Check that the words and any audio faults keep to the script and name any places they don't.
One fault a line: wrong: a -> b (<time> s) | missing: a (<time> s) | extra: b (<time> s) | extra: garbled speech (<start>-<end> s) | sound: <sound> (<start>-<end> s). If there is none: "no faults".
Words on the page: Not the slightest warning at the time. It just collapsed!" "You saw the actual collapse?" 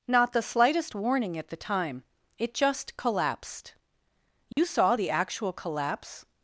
sound: dropout (4.5-4.6 s)